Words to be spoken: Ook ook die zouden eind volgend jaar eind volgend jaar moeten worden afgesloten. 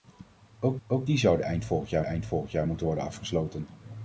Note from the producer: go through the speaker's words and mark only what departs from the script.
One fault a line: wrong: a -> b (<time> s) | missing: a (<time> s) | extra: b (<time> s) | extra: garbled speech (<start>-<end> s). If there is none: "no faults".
no faults